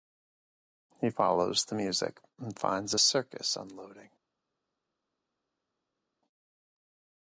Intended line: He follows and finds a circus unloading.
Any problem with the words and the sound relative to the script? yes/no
yes